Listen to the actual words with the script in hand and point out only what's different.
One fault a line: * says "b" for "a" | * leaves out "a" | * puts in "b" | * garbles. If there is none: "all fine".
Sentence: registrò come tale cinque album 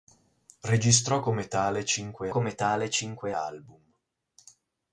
* puts in "come tale cinque"